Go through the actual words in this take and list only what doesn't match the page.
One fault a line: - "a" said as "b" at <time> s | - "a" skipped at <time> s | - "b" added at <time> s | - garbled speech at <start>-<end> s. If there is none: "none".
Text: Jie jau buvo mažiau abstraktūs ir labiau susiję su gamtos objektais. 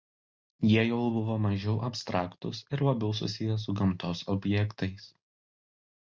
none